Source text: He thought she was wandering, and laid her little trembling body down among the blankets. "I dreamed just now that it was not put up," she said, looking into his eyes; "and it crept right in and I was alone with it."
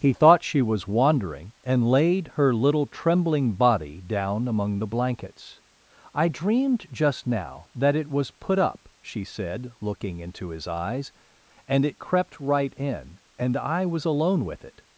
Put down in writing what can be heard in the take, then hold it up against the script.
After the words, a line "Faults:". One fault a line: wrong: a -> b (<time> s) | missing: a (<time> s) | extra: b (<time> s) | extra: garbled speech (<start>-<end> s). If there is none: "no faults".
He thought she was wandering, and laid her little trembling body down among the blankets. "I dreamed just now that it was put up," she said, looking into his eyes; "and it crept right in and I was alone with it."
Faults:
missing: not (8.3 s)